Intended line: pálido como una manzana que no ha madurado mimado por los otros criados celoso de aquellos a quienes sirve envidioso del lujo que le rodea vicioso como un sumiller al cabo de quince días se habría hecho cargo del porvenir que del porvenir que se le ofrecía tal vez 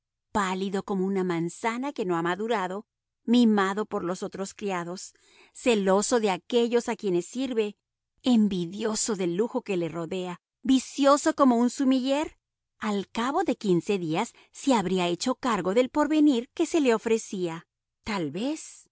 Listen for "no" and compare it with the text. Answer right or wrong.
right